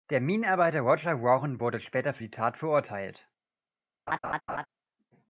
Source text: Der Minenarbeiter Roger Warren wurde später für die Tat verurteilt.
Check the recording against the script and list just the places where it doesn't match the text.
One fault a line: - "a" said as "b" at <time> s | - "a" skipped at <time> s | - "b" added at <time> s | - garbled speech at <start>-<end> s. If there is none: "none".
none